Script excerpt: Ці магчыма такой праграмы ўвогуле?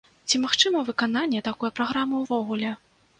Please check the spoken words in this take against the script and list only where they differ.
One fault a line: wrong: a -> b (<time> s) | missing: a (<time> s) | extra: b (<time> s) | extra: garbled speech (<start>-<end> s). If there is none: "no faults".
extra: выкананне (0.9 s)